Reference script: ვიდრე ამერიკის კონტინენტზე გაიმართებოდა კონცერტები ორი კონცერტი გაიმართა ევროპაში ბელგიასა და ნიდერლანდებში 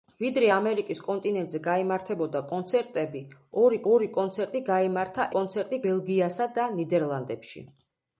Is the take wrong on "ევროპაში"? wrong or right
wrong